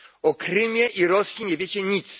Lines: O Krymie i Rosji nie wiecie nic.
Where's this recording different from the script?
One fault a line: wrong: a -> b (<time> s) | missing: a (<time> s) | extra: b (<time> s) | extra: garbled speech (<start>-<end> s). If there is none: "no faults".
no faults